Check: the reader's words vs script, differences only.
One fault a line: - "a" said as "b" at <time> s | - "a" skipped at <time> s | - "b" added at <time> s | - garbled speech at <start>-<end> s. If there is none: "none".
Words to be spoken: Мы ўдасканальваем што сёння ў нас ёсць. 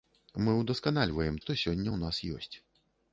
none